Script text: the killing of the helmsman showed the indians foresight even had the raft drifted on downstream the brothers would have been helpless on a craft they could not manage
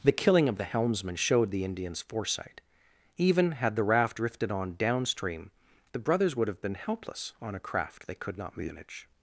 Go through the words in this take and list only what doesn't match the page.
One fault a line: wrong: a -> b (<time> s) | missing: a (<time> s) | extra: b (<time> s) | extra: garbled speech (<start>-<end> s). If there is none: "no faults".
no faults